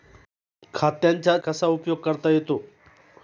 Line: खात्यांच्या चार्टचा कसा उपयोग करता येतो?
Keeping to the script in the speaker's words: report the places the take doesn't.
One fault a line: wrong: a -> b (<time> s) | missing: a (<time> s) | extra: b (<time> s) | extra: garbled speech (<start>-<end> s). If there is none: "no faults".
missing: चार्टचा (1.4 s)